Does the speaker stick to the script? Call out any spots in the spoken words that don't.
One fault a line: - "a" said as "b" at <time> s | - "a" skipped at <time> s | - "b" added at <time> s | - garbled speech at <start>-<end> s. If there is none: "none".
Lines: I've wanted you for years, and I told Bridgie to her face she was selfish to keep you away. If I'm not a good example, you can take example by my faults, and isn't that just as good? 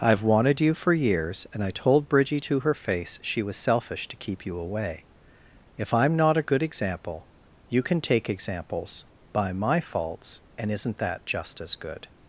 - "example" said as "examples" at 8.3 s